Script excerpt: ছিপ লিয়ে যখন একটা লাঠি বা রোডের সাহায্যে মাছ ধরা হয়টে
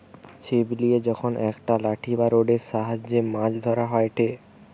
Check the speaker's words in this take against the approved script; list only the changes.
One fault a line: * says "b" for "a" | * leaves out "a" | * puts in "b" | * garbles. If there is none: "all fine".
all fine